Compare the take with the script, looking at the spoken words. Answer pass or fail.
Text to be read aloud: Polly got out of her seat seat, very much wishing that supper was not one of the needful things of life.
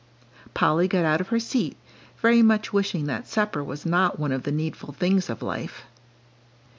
fail